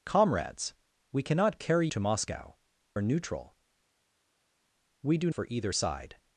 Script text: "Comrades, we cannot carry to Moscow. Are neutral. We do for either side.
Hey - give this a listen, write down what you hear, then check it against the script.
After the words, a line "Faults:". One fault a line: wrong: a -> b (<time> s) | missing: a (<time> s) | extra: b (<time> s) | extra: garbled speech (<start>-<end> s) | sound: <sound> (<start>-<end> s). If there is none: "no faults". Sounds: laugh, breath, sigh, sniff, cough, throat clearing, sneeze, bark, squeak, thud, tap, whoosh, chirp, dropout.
"Comrades, we cannot carry to Moscow. Are neutral. We do for either side.
Faults:
no faults